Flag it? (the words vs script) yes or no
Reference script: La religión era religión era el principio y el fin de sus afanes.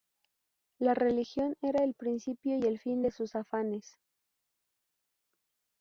yes